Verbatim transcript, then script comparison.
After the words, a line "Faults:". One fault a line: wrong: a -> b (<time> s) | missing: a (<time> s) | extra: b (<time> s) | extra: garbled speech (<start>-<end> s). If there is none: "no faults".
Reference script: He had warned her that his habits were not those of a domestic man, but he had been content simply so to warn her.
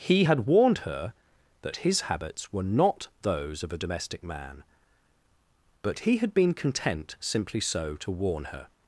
He had warned her that his habits were not those of a domestic man, but he had been content simply so to warn her.
Faults:
no faults